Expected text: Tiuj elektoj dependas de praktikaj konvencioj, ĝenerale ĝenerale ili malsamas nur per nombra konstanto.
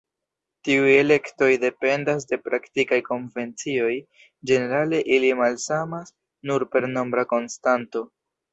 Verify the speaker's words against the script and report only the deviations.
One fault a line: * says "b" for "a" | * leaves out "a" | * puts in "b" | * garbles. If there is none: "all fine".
* leaves out "ĝenerale"